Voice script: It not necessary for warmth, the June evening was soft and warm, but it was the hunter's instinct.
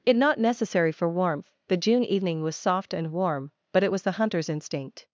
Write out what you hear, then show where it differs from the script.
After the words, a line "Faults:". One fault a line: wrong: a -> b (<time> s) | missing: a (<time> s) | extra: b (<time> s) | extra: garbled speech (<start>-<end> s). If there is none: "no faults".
It not necessary for warmth, the June evening was soft and warm, but it was the hunter's instinct.
Faults:
no faults